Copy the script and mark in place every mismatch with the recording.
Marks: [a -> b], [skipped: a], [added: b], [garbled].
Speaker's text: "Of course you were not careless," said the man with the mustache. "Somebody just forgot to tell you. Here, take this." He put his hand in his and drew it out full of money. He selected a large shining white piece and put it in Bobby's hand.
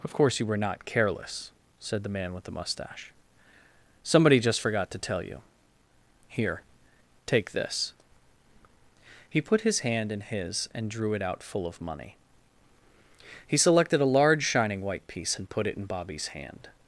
"Of course you were not careless," said the man with the mustache. "Somebody just forgot to tell you. Here, take this." He put his hand in his and drew it out full of money. He selected a large shining white piece and put it in Bobby's hand.